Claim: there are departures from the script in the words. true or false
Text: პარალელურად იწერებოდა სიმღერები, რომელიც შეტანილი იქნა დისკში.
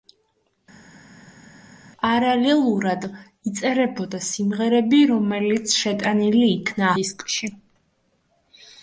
false